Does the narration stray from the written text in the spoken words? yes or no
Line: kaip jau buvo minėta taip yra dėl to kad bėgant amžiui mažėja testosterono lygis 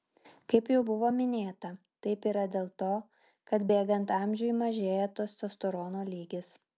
no